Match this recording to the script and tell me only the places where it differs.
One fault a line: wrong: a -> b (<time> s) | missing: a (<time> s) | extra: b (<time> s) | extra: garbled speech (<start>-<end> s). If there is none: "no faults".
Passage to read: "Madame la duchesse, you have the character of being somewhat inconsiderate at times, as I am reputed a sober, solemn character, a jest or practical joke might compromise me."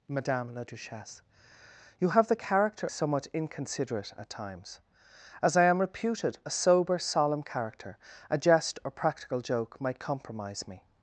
missing: of being (2.9 s)